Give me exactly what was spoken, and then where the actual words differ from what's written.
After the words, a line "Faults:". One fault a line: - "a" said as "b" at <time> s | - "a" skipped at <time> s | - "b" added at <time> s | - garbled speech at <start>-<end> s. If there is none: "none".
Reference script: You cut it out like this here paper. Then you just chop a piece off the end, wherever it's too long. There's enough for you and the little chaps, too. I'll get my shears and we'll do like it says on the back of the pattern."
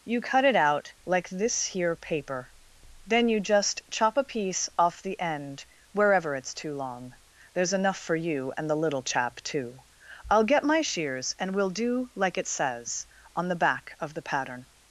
You cut it out like this here paper. Then you just chop a piece off the end, wherever it's too long. There's enough for you and the little chap, too. I'll get my shears and we'll do like it says on the back of the pattern."
Faults:
- "chaps" said as "chap" at 9.0 s